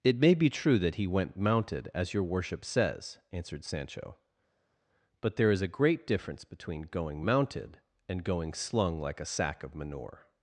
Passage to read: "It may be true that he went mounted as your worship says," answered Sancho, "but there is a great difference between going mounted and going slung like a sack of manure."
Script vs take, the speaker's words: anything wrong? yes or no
no